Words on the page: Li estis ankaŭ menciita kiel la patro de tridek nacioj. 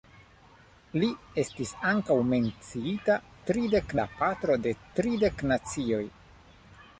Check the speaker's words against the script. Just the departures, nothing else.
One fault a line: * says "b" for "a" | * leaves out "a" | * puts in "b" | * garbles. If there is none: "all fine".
* says "tridek" for "kiel"